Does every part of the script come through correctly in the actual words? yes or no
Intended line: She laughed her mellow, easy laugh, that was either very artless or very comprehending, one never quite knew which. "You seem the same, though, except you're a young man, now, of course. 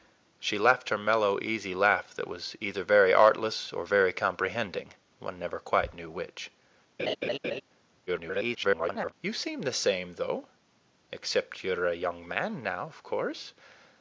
no